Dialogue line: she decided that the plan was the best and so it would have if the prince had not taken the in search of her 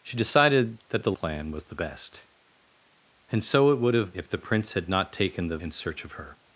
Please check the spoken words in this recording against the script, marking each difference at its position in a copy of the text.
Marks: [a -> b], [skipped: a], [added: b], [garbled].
she decided that the plan was the best and so it would have if the prince had not taken the in search of her